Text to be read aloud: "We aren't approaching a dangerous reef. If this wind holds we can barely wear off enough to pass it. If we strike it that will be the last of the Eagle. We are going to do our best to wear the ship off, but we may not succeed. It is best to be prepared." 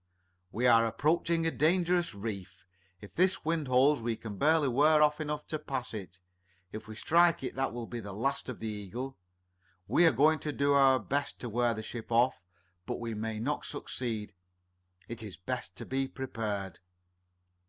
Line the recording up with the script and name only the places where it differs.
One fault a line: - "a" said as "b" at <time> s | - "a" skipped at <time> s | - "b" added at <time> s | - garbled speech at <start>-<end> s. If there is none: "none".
- "aren't" said as "are" at 0.7 s